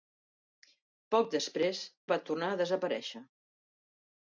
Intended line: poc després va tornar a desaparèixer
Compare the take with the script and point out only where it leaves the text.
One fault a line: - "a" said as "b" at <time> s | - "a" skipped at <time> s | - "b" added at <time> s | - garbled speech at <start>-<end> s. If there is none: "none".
none